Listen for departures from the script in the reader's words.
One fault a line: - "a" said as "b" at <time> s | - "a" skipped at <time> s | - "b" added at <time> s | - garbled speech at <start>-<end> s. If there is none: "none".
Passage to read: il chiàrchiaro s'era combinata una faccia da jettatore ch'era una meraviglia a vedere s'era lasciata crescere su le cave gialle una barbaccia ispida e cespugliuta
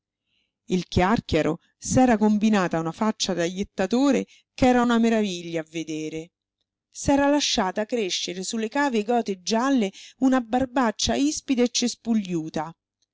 - "gote" added at 9.0 s